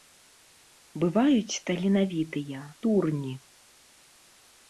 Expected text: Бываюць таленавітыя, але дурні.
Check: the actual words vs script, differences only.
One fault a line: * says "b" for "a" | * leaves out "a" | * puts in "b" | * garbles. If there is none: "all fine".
* leaves out "але"